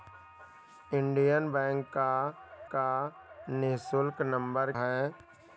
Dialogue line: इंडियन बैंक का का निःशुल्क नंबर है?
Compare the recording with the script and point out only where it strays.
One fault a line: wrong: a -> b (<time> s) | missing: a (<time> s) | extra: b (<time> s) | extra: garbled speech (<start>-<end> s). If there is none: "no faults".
no faults